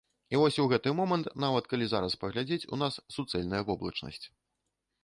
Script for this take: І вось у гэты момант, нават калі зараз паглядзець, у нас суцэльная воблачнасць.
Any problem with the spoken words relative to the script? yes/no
no